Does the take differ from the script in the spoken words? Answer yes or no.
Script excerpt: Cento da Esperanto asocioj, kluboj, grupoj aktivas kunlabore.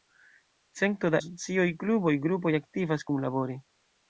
yes